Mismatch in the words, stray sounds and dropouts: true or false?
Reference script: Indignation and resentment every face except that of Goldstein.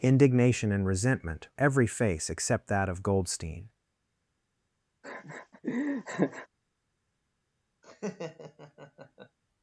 true